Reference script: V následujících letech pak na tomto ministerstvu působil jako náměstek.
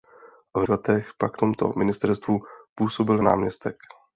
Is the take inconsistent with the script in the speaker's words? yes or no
yes